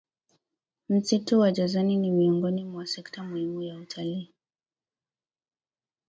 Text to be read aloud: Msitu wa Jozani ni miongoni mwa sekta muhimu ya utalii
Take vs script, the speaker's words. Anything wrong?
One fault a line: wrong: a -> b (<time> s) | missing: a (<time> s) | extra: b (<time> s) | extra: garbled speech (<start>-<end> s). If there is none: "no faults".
no faults